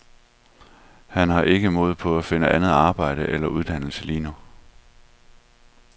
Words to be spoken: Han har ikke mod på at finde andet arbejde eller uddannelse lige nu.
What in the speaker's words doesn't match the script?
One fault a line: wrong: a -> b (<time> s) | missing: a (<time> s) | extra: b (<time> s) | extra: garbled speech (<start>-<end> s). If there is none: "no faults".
no faults